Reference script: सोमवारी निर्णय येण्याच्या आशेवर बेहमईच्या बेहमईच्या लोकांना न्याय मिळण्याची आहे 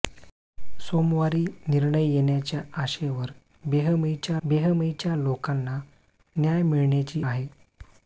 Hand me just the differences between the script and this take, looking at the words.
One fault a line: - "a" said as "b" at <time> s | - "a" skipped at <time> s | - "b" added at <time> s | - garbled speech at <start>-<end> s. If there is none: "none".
none